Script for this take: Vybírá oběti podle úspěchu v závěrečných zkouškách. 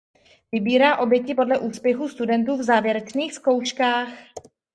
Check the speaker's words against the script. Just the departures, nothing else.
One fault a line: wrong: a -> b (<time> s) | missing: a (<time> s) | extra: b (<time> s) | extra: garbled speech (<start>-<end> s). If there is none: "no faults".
extra: studentů (2.1 s)